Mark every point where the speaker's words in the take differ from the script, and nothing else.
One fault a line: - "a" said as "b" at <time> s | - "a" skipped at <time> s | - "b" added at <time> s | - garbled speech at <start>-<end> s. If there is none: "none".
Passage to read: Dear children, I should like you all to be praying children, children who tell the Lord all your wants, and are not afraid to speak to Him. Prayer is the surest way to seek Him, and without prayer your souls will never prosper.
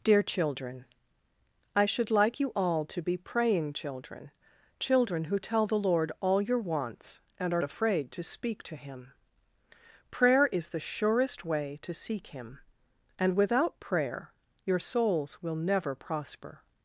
- "not" skipped at 7.6 s